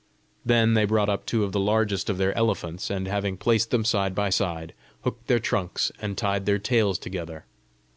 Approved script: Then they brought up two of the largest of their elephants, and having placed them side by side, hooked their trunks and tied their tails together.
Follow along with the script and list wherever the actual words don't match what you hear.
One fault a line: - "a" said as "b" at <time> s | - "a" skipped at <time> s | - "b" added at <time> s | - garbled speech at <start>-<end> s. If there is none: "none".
none